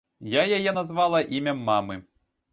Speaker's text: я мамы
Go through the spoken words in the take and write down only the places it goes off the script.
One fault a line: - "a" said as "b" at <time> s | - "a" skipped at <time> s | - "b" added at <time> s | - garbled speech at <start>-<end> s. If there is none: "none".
- "яе назвала імем" added at 0.6 s